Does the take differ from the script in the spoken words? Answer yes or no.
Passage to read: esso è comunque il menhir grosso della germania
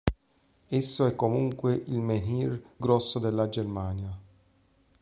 no